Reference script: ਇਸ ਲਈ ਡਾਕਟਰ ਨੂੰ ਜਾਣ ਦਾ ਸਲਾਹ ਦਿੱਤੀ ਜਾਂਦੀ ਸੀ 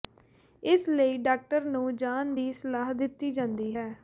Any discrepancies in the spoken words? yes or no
yes